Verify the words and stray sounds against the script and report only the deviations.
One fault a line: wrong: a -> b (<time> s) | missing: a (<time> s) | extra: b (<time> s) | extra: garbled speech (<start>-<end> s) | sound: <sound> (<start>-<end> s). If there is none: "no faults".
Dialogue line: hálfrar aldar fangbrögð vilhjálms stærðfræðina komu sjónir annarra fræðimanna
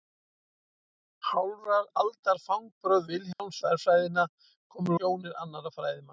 sound: dropout (3.3-3.4 s)